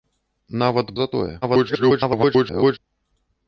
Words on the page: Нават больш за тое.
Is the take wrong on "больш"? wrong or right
wrong